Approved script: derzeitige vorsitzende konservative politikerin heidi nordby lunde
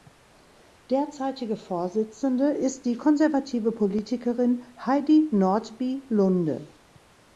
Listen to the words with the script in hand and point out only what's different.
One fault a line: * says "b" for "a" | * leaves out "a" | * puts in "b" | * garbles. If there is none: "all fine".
* puts in "ist die"